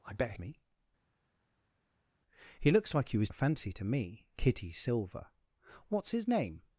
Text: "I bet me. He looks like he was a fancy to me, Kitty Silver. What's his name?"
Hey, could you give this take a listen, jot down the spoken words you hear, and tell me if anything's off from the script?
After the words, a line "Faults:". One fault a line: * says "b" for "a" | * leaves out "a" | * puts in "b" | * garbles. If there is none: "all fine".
"I bet me. He looks like he was a fancy to me, Kitty Silver. What's his name?"
Faults:
all fine